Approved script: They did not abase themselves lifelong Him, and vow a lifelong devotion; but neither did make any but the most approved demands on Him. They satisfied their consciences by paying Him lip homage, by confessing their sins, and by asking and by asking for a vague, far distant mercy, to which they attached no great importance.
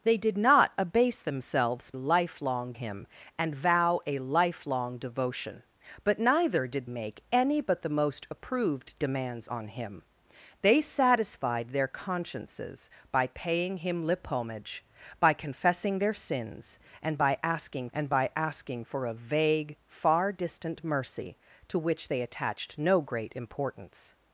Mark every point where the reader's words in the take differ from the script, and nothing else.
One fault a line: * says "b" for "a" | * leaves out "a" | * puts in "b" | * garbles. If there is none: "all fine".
all fine